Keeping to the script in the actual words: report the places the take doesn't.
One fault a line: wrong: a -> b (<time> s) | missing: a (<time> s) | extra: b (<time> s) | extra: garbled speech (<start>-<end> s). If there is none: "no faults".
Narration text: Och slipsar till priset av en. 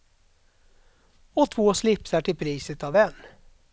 extra: två (1.5 s)